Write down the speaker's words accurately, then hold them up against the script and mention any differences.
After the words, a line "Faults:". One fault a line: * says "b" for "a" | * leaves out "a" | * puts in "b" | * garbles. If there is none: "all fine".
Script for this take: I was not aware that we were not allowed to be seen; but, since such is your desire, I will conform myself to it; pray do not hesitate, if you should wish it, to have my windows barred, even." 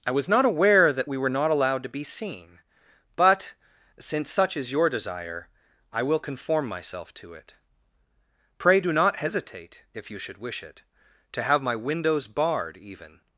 I was not aware that we were not allowed to be seen; but, since such is your desire, I will conform myself to it; pray do not hesitate, if you should wish it, to have my windows barred, even."
Faults:
all fine